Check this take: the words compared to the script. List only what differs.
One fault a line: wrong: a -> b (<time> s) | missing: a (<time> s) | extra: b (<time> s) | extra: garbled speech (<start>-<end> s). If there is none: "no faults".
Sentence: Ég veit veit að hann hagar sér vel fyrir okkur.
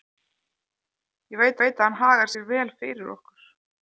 no faults